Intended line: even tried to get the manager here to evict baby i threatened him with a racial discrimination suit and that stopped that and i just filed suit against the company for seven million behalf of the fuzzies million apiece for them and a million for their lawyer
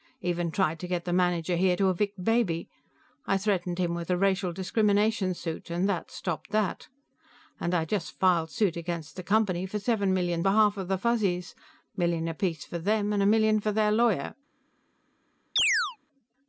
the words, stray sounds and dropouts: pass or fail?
fail